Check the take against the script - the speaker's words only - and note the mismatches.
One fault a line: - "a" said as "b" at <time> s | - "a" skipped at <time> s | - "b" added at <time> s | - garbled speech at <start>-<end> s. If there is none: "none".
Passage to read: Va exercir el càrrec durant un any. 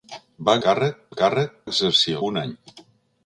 - "exercir" said as "càrrec" at 0.7 s
- "durant" said as "exercir" at 1.7 s